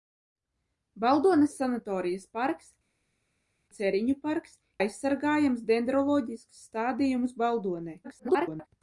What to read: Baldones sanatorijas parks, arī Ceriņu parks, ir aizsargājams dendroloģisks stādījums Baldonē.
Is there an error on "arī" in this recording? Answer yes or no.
yes